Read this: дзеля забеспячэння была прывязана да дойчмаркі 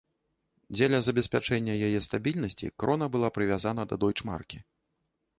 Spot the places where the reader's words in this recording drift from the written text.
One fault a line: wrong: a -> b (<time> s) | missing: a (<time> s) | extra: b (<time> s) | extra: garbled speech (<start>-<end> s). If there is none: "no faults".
extra: яе стабільнасці крона (1.9 s)